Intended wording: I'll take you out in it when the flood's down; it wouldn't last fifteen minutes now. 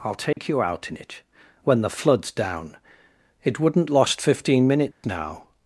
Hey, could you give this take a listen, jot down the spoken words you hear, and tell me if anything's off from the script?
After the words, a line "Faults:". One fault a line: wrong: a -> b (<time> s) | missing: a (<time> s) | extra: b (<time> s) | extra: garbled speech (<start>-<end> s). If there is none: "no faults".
I'll take you out in it when the flood's down; it wouldn't lost fifteen minutes now.
Faults:
wrong: last -> lost (3.9 s)